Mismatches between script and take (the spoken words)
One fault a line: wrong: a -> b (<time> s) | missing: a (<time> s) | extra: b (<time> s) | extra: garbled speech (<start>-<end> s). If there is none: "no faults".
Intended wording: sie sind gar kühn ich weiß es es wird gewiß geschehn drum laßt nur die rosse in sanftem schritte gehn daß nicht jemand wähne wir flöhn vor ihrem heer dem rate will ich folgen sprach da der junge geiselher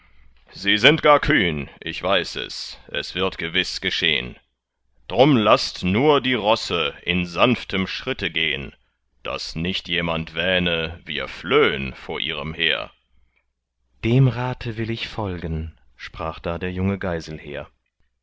no faults